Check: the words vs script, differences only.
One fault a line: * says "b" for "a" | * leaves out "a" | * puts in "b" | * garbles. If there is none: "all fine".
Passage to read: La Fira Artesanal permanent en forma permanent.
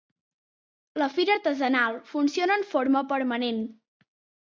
* says "funciona" for "permanent"